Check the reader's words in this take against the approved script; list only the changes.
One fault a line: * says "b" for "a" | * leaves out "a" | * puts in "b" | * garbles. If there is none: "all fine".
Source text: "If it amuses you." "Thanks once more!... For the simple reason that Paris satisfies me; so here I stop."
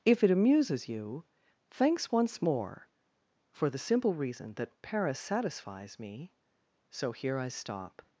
all fine